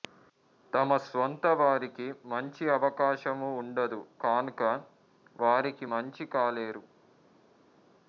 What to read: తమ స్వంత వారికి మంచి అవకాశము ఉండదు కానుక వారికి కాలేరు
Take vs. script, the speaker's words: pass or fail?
fail